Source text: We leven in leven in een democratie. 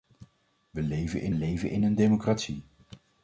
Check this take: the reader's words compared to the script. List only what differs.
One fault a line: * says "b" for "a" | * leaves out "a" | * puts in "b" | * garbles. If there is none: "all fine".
all fine